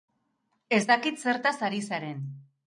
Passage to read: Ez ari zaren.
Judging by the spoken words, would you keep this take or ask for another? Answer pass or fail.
fail